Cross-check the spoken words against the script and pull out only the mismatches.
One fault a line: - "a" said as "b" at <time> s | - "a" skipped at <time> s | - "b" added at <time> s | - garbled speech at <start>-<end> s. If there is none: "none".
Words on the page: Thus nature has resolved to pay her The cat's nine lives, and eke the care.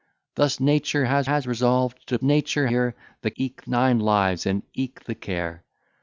- "has" added at 1.2 s
- "pay" said as "nature" at 2.2 s
- "cat's" said as "eke" at 3.4 s